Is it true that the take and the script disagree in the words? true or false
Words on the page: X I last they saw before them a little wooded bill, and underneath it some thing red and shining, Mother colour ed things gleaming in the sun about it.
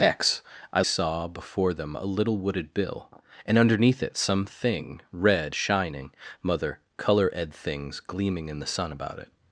true